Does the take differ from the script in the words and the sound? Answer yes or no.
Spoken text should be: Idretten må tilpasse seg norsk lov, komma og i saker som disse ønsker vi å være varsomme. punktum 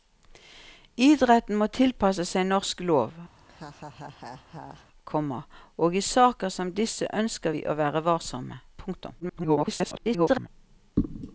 yes